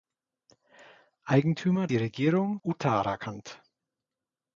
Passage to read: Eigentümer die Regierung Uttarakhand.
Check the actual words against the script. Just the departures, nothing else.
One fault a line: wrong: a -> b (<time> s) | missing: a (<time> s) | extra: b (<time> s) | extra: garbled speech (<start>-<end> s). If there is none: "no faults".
no faults